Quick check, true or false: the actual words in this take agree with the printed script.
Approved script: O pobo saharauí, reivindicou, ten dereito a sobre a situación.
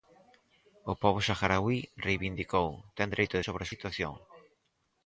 true